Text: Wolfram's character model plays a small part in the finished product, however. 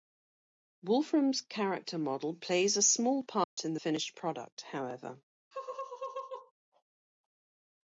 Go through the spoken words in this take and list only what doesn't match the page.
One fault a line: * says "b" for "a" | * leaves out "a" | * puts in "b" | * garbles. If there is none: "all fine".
all fine